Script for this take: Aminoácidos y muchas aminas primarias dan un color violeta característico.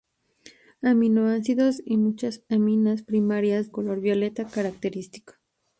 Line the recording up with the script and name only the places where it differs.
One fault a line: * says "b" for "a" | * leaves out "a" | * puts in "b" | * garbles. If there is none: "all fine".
* leaves out "dan un"